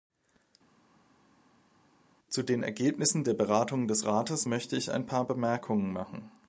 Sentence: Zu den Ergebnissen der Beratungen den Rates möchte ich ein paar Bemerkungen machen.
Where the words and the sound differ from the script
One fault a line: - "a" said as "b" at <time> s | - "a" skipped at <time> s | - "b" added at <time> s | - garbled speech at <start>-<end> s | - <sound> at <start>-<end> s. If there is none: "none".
- "den" said as "des" at 3.9 s